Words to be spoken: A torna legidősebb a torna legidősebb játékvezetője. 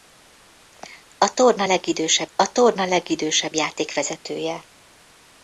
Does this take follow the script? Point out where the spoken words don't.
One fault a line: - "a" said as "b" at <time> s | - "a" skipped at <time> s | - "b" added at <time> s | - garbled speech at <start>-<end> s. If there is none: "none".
none